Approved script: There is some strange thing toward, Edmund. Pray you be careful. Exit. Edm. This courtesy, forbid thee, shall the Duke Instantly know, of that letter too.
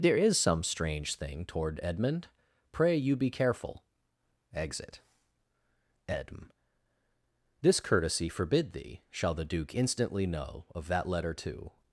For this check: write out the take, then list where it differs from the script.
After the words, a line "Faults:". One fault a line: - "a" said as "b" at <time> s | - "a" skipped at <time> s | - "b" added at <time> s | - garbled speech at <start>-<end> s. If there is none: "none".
There is some strange thing toward, Edmund. Pray you be careful. Exit. Edm. This courtesy, forbid thee, shall the Duke Instantly know, of that letter too.
Faults:
none